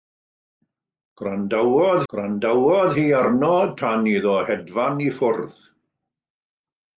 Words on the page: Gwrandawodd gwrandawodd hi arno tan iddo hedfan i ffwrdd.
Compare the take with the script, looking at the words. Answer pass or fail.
pass